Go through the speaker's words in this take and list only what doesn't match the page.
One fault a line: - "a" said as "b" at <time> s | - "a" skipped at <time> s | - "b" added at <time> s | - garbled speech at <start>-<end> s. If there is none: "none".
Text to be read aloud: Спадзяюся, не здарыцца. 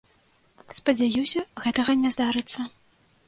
- "гэтага" added at 1.6 s